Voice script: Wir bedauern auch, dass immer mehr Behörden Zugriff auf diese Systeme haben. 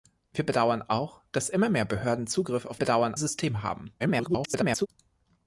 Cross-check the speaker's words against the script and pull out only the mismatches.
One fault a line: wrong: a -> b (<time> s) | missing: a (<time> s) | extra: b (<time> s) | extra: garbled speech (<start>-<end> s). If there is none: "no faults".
wrong: diese -> bedauern (2.8 s)
extra: garbled speech (4.0-4.9 s)